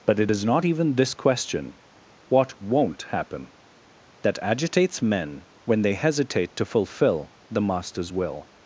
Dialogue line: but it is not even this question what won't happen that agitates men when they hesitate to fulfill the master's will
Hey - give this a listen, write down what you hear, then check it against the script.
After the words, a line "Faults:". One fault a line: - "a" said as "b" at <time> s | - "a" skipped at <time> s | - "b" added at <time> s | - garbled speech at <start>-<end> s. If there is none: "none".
but it is not even this question what won't happen that agitates men when they hesitate to fulfill the master's will
Faults:
none